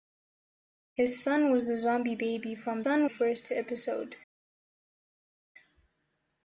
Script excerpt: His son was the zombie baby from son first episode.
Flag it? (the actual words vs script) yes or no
no